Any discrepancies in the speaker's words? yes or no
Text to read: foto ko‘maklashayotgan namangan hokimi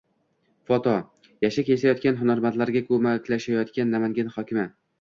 yes